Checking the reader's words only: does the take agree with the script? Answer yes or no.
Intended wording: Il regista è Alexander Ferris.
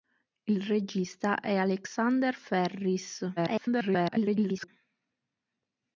no